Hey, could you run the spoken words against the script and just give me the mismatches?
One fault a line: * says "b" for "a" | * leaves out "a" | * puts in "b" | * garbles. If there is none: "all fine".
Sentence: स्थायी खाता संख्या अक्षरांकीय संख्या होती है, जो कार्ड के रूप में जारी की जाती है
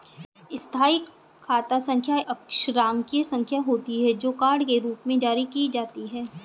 all fine